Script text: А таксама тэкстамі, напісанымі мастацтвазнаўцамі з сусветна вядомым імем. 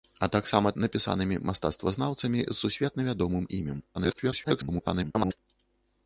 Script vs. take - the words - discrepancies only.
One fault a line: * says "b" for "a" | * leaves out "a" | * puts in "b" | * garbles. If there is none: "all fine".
* leaves out "тэкстамі"
* garbles